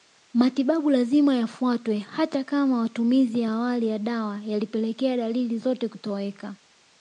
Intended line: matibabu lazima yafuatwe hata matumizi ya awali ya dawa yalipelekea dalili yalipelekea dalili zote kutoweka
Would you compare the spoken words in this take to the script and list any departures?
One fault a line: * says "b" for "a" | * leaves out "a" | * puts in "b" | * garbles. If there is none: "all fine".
* puts in "kama"
* leaves out "yalipelekea dalili"